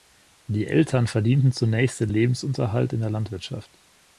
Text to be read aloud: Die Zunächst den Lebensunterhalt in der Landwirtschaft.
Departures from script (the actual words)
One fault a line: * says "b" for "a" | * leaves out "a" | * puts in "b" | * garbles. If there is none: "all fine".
* puts in "Eltern verdienten"